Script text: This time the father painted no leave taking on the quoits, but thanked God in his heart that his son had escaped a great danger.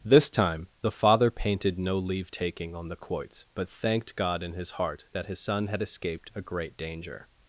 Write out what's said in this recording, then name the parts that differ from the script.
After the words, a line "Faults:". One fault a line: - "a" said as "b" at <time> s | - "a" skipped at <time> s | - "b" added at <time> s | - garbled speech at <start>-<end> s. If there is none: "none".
This time the father painted no leave taking on the quoits, but thanked God in his heart that his son had escaped a great danger.
Faults:
none